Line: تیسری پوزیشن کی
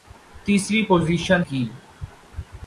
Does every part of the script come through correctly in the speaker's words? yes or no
yes